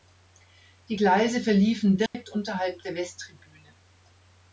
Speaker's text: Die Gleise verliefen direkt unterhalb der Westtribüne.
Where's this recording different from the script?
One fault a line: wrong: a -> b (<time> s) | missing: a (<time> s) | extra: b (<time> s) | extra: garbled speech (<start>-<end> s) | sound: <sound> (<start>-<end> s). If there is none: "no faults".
sound: dropout (2.1-2.1 s)